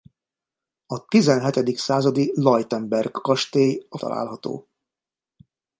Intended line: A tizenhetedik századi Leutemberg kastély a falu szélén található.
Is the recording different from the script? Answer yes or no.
yes